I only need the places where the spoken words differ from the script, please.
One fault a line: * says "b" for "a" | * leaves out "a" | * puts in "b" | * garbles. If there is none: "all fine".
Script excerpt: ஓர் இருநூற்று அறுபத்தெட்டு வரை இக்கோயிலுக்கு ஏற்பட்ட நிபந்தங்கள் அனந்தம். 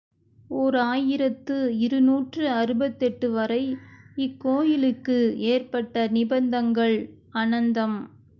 * puts in "ஆயிரத்து"